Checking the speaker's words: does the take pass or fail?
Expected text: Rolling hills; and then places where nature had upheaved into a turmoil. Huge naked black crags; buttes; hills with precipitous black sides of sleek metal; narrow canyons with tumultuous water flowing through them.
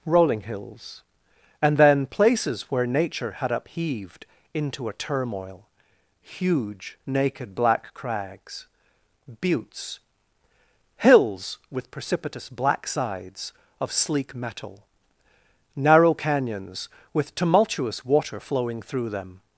pass